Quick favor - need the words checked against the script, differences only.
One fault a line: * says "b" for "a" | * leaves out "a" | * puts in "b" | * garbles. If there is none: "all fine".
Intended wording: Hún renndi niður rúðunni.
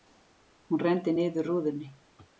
all fine